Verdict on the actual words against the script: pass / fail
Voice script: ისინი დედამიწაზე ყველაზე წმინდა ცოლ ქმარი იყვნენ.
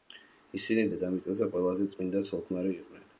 pass